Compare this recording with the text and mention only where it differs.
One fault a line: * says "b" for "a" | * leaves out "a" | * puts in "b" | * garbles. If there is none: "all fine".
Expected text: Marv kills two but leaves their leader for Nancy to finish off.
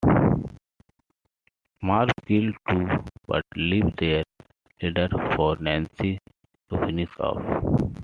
all fine